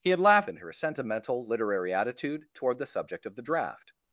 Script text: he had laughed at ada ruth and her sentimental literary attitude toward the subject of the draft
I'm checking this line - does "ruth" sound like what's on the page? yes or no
no